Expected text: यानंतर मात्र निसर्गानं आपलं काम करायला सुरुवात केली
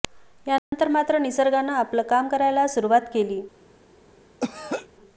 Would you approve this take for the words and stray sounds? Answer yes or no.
no